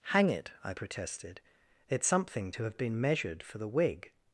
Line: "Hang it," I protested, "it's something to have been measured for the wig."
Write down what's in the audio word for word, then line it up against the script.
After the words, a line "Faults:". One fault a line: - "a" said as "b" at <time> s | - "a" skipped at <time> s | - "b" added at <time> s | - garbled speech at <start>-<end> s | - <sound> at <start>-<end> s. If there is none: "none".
"Hang it," I protested, "it's something to have been measured for the wig."
Faults:
none